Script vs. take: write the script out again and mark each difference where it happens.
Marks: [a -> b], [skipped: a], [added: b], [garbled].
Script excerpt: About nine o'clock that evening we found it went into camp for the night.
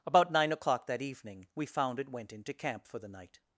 About nine o'clock that evening we found it went into camp for the night.